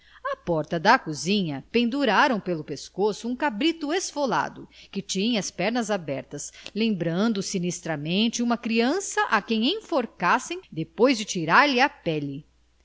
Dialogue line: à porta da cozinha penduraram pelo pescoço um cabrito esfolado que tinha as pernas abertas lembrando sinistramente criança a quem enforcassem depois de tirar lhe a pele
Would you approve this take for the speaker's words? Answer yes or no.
no